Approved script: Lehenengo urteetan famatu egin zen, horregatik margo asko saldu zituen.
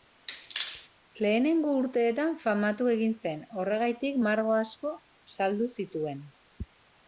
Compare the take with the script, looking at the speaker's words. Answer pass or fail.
pass